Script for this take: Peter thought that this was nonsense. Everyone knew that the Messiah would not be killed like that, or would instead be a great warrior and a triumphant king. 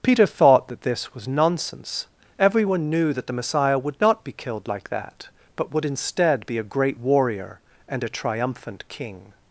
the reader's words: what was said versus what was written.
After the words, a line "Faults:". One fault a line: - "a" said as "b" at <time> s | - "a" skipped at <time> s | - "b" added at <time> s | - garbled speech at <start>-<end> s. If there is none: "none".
Peter thought that this was nonsense. Everyone knew that the Messiah would not be killed like that, but would instead be a great warrior and a triumphant king.
Faults:
- "or" said as "but" at 5.6 s